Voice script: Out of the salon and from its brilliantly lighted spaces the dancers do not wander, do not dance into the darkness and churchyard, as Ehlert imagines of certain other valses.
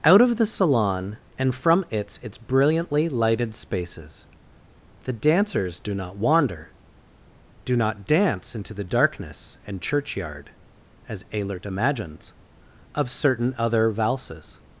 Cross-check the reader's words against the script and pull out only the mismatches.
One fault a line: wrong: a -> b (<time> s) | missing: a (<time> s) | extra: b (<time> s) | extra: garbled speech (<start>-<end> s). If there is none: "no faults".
extra: its (2.2 s)